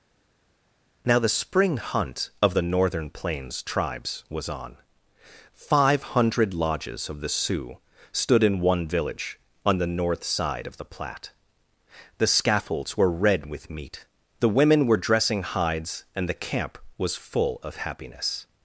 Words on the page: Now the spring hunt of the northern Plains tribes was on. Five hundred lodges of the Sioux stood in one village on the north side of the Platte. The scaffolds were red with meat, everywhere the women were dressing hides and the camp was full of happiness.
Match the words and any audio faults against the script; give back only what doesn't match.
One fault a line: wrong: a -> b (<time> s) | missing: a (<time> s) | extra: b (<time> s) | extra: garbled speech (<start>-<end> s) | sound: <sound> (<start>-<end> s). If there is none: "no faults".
missing: everywhere (14.0 s)